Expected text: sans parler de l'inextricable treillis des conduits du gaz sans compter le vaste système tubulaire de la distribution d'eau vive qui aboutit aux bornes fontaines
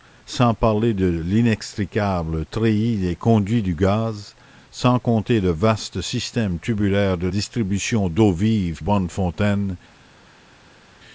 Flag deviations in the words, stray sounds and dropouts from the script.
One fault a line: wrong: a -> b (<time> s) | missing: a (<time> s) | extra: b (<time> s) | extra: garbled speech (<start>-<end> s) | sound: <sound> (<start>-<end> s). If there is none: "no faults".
missing: la (7.3 s)
missing: qui aboutit aux (8.8 s)